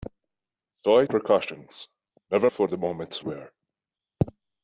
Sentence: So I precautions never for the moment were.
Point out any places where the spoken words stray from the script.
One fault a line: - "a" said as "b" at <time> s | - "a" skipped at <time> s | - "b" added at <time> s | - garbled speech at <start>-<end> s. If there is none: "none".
none